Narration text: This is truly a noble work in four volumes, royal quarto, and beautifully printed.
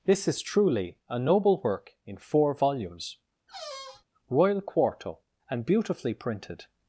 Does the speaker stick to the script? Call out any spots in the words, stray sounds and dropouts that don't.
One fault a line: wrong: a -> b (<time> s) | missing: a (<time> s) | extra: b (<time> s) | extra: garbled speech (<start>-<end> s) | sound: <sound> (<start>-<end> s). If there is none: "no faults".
sound: squeak (3.5-4.1 s)